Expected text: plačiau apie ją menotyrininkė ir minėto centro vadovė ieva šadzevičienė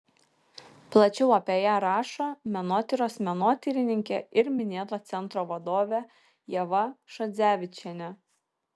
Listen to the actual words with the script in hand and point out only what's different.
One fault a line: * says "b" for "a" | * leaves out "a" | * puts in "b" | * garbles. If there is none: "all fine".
* puts in "rašo menotyros"